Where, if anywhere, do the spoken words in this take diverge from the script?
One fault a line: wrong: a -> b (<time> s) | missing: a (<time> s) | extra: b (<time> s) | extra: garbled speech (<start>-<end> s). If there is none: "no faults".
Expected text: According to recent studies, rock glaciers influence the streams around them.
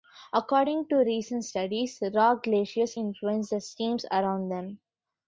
no faults